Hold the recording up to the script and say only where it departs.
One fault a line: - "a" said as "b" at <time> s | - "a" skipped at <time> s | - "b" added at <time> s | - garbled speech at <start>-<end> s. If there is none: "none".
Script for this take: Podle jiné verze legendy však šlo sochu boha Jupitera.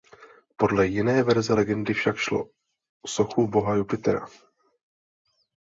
none